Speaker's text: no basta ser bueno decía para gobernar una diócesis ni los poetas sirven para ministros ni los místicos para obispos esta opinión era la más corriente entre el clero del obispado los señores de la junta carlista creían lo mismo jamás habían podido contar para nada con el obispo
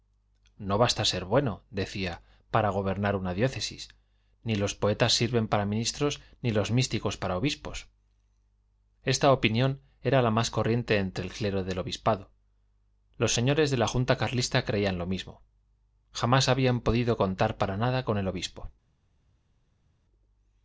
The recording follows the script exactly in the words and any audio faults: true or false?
true